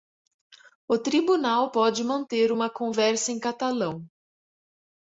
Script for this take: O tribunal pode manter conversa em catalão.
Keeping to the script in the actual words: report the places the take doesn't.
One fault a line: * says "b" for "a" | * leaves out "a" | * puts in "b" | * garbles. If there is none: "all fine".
* puts in "uma"